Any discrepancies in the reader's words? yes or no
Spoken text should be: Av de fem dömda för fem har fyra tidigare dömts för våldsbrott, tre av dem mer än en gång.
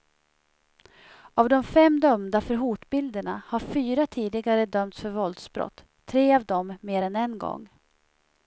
yes